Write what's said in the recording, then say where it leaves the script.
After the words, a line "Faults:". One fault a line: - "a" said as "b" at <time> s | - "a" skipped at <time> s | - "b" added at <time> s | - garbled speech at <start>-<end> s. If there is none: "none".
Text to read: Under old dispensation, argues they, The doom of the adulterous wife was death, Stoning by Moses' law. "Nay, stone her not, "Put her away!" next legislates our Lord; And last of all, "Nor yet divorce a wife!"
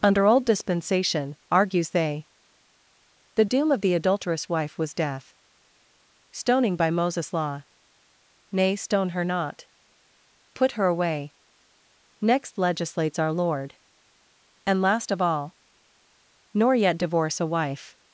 Under old dispensation, argues they, The doom of the adulterous wife was death, Stoning by Moses' law. "Nay, stone her not, "Put her away!" next legislates our Lord; And last of all, "Nor yet divorce a wife!"
Faults:
none